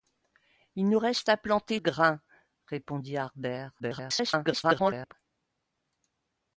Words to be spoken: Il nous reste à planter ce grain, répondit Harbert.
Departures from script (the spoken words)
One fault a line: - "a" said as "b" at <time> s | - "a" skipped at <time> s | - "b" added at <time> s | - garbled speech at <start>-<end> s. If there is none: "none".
- "ce" skipped at 1.8 s
- garbled speech at 3.8-5.1 s